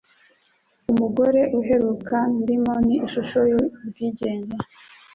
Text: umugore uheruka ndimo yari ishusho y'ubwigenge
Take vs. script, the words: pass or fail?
fail